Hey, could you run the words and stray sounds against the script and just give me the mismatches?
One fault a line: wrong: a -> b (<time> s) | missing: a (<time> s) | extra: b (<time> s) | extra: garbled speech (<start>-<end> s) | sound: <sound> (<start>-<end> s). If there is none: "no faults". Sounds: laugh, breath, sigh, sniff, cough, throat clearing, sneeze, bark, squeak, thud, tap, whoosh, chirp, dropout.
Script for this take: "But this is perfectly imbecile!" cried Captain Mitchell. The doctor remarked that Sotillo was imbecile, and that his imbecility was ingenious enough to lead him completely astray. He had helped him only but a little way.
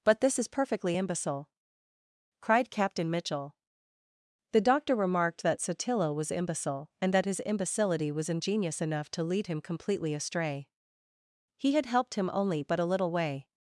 no faults